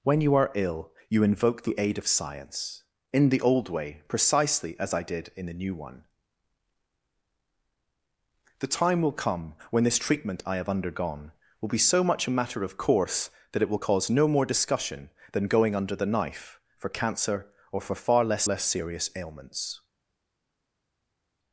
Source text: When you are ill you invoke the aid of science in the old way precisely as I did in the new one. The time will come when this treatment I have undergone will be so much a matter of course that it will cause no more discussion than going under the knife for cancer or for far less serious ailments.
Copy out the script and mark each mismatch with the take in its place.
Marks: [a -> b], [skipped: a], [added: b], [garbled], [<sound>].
When you are ill you invoke the aid of science in the old way precisely as I did in the new one. The time will come when this treatment I have undergone will be so much a matter of course that it will cause no more discussion than going under the knife for cancer or for far less [added: less] serious ailments.